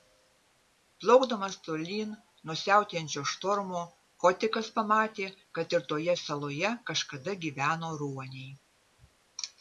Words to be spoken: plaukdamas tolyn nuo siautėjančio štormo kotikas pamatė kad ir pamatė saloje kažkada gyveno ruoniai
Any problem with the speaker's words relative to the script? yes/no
yes